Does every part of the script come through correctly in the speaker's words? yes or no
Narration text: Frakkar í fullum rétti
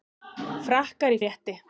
no